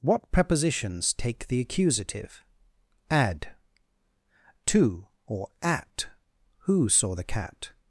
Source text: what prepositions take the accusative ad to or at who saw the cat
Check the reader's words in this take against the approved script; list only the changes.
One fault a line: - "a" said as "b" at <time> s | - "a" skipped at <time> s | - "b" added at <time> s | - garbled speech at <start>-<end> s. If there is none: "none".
none